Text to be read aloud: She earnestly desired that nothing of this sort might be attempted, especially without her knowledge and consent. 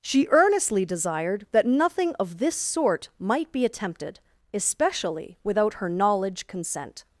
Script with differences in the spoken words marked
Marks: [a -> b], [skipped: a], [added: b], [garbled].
She earnestly desired that nothing of this sort might be attempted, especially without her knowledge [skipped: and] consent.